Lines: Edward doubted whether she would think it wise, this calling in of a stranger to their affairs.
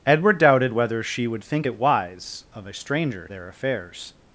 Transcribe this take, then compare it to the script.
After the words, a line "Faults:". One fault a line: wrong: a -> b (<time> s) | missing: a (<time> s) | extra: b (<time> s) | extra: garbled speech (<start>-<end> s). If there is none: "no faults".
Edward doubted whether she would think it wise, of a stranger their affairs.
Faults:
missing: this calling in (2.4 s)
missing: to (3.3 s)